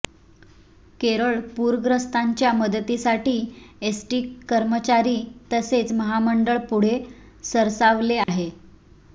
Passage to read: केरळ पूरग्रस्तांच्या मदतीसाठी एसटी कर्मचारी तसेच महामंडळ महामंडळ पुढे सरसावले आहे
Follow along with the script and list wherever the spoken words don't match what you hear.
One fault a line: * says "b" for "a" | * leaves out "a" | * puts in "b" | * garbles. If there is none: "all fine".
* leaves out "महामंडळ"